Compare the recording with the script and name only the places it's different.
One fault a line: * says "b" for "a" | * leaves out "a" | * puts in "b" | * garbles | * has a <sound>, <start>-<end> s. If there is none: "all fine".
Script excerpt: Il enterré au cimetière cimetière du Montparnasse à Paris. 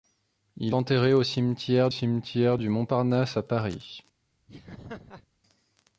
* has a laugh, 4.5-5.3 s